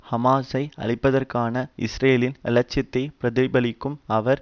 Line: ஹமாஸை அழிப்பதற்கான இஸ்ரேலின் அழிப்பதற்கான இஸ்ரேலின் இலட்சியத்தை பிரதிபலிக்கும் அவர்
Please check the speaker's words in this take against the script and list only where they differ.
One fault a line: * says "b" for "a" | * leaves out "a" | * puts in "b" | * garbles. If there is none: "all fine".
* leaves out "அழிப்பதற்கான இஸ்ரேலின்"